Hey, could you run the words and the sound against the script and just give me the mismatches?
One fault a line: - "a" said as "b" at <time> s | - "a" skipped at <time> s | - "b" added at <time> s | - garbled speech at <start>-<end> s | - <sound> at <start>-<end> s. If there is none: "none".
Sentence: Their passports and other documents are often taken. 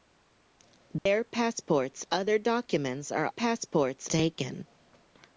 - dropout at 1.0-1.1 s
- "and" skipped at 2.0 s
- "often" said as "passports" at 3.3 s